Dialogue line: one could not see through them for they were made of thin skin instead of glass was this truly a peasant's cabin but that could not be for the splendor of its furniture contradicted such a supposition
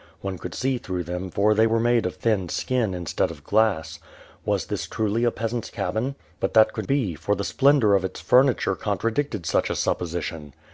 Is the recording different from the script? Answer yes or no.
yes